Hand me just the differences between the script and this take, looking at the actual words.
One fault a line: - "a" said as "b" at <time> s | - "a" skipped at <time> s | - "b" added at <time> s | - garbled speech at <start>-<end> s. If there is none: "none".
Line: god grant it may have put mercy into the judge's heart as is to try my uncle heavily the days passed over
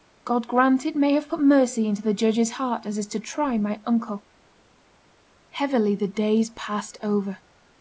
none